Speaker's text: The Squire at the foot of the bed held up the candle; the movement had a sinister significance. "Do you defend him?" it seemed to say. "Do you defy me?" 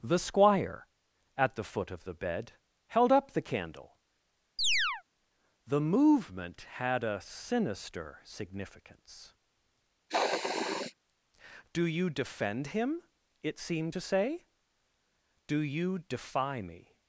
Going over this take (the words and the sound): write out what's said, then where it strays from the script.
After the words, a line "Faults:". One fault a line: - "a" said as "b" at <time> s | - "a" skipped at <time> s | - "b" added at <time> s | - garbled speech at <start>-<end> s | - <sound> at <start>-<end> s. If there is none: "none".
The Squire at the foot of the bed held up the candle; the movement had a sinister significance. "Do you defend him?" it seemed to say. "Do you defy me?"
Faults:
- chirp at 4.6-5.0 s
- sniff at 10.1-10.9 s